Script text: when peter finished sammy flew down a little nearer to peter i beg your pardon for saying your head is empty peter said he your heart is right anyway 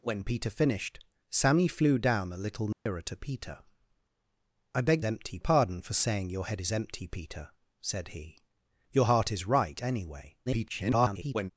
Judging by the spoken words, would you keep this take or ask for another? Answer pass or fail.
fail